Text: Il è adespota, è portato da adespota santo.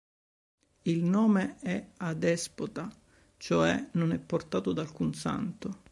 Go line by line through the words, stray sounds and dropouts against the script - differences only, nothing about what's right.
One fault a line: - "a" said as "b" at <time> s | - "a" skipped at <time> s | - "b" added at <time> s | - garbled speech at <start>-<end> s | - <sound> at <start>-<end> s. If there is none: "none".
- "nome" added at 1.0 s
- "cioè non" added at 3.4 s
- "adespota" said as "alcun" at 4.8 s